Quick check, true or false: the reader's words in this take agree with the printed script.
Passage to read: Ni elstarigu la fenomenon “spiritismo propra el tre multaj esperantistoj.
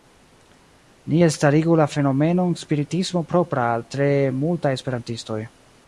false